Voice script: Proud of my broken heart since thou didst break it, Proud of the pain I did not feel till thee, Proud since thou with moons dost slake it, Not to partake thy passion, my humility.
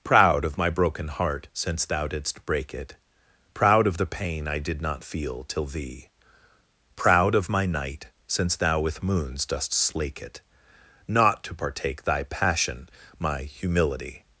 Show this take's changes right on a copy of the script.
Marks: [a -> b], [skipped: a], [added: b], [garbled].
Proud of my broken heart since thou didst break it, Proud of the pain I did not feel till thee, Proud [added: of my night] since thou with moons dost slake it, Not to partake thy passion, my humility.